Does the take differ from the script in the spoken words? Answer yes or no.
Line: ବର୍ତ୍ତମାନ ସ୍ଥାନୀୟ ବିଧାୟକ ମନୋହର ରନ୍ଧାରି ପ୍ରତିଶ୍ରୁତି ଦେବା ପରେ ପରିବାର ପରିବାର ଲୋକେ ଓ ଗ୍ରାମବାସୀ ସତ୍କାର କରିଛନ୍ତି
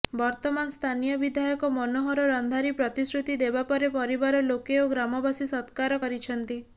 yes